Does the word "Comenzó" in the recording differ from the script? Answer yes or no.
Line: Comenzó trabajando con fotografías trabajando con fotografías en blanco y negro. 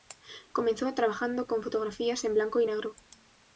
no